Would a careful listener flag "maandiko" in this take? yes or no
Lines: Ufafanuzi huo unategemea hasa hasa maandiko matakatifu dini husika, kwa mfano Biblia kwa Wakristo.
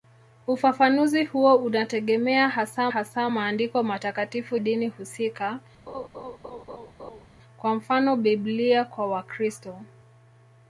no